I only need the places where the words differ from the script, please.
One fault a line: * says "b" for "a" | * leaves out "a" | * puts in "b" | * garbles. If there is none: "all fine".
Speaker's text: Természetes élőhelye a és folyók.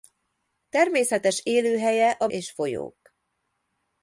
all fine